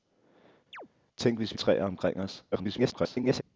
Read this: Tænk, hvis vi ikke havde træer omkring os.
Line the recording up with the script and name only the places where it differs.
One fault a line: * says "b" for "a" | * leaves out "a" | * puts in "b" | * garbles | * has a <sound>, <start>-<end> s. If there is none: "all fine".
* has a chirp, 0.7-0.9 s
* leaves out "ikke havde"
* garbles